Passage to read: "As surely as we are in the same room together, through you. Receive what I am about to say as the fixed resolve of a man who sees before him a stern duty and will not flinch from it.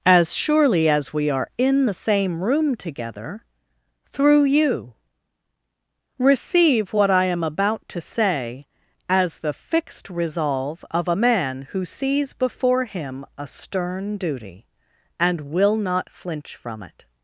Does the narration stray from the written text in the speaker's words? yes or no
no